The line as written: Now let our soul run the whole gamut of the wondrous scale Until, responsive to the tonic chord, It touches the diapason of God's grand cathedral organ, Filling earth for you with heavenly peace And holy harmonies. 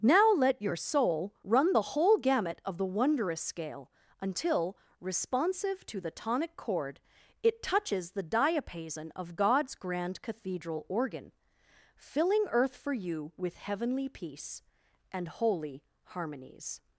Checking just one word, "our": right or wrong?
wrong